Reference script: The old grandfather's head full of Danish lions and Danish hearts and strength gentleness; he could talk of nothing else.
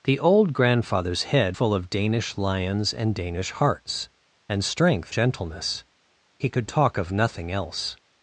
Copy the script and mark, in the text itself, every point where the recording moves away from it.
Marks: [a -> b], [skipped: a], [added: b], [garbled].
The old grandfather's head full of Danish lions and Danish hearts and strength gentleness; he could talk of nothing else.